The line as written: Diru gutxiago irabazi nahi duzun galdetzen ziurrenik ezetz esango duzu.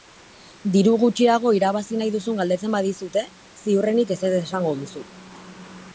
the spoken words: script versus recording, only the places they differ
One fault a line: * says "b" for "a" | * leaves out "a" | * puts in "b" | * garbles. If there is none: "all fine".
* puts in "badizute"